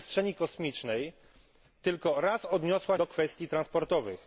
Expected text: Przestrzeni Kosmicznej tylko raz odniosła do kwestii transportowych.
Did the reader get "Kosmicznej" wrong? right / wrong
right